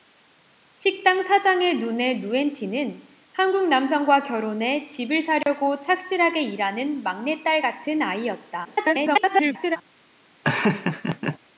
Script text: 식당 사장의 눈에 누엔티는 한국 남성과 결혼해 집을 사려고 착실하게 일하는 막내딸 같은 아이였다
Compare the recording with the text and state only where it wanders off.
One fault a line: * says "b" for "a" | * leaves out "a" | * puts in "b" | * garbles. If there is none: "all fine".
* garbles